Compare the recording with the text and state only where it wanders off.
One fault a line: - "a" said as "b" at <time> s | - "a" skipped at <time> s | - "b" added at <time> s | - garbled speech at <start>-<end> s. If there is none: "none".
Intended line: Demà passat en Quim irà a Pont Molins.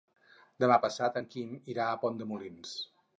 - "de" added at 2.2 s